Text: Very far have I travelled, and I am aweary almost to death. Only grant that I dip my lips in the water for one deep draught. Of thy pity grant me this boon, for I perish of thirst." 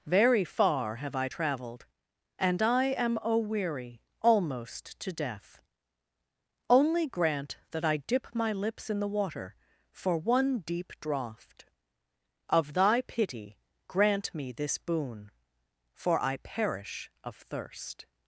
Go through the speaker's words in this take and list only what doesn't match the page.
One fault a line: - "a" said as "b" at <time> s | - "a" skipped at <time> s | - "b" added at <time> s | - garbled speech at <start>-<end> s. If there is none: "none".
none